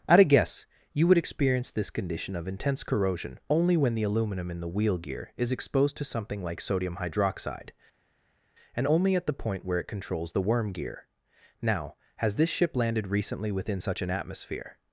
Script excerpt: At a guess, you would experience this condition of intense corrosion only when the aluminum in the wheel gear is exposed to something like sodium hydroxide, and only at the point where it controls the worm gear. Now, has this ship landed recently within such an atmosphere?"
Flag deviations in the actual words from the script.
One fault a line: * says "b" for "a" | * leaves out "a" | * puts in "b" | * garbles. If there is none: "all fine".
all fine